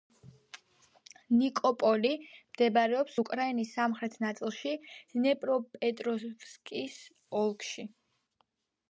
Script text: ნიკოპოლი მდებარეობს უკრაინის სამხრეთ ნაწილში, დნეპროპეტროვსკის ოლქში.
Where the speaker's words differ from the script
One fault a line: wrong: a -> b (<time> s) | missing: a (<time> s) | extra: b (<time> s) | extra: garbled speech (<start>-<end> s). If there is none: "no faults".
no faults